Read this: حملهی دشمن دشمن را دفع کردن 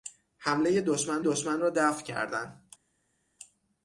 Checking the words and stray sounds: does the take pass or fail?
pass